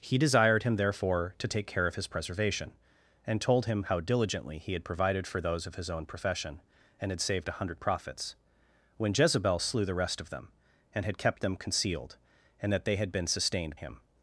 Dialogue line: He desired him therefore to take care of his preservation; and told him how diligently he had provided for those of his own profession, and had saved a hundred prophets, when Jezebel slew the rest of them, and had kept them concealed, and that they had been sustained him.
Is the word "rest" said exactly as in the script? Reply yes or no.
yes